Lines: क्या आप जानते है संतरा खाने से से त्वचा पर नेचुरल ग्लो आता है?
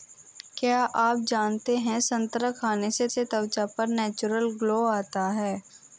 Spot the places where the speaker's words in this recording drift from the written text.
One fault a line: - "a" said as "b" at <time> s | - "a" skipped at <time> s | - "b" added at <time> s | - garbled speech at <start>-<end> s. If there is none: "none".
none